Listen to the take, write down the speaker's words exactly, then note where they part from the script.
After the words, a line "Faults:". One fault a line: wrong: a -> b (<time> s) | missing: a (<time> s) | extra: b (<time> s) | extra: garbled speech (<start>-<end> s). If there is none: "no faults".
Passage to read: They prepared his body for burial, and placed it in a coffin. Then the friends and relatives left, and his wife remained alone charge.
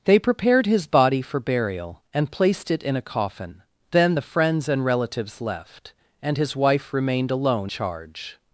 They prepared his body for burial, and placed it in a coffin. Then the friends and relatives left, and his wife remained alone charge.
Faults:
no faults